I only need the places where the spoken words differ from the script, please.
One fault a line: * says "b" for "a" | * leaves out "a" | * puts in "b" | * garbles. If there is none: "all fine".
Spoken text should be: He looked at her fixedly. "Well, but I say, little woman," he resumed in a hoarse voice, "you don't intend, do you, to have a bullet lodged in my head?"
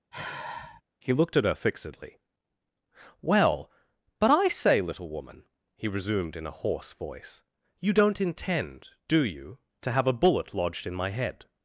all fine